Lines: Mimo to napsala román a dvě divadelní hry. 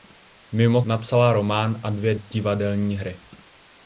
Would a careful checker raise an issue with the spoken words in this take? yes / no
yes